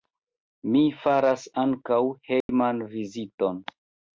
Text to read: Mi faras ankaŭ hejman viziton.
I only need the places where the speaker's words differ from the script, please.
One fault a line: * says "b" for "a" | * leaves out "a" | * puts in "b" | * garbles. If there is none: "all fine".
all fine